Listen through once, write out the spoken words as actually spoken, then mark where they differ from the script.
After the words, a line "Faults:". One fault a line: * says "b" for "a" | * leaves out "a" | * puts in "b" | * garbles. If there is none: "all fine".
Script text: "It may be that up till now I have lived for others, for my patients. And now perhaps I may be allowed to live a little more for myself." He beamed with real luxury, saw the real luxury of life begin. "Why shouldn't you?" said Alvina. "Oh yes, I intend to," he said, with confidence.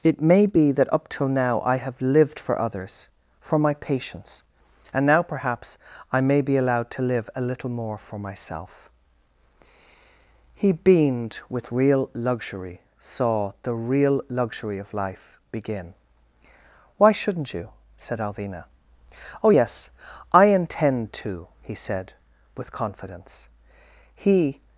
"It may be that up till now I have lived for others, for my patients. And now perhaps I may be allowed to live a little more for myself." He beamed with real luxury, saw the real luxury of life begin. "Why shouldn't you?" said Alvina. "Oh yes, I intend to," he said, with confidence. He
Faults:
* puts in "He"